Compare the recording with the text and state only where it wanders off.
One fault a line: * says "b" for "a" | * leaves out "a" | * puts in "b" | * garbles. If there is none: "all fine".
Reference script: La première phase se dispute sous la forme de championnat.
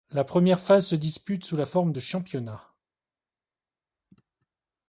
all fine